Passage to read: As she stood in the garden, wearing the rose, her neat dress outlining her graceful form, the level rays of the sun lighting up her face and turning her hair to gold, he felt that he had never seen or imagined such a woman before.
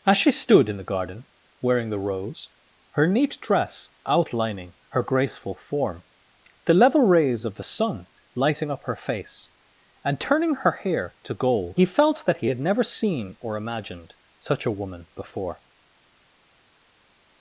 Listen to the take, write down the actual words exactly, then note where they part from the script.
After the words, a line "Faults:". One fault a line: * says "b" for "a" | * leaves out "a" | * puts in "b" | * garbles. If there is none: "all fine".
As she stood in the garden, wearing the rose, her neat dress outlining her graceful form, the level rays of the sun lighting up her face and turning her hair to gold, he felt that he had never seen or imagined such a woman before.
Faults:
all fine